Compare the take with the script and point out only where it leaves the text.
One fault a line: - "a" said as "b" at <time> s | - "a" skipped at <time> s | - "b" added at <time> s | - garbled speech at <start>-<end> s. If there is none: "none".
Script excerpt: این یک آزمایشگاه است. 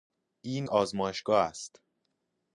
- "یک" skipped at 0.7 s